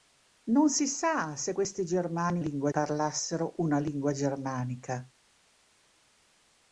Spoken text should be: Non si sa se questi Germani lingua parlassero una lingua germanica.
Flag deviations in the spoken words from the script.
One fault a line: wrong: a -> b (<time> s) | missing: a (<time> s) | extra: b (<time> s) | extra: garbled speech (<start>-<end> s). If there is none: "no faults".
no faults